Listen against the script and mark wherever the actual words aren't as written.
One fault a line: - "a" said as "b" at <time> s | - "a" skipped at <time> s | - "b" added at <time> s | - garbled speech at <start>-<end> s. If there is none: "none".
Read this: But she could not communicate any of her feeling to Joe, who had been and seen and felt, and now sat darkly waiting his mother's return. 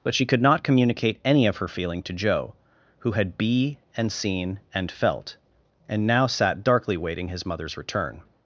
- "been" said as "be" at 3.4 s